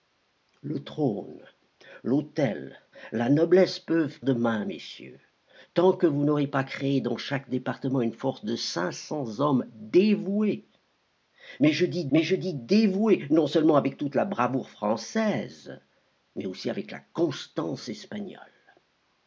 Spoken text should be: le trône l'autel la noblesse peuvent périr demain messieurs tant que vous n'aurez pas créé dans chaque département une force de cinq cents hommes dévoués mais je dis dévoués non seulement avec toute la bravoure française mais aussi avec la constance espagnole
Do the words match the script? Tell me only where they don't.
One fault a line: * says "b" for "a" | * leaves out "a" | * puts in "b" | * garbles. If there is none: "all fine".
* leaves out "périr"
* puts in "mais je dis"